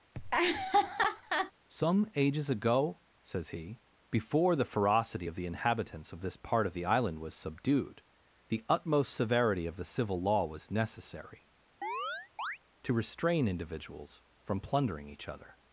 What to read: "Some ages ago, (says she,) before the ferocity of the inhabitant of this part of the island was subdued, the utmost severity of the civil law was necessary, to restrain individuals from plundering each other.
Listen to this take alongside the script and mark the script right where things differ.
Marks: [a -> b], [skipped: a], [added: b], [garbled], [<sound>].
[laugh] "Some ages ago, (says [she,) -> he] before the ferocity of the [inhabitant -> inhabitants] of this part of the island was subdued, the utmost severity of the civil law was necessary, [chirp] to restrain individuals from plundering each other.